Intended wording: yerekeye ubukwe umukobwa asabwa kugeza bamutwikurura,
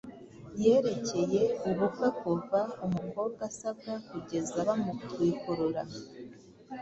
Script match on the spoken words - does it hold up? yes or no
no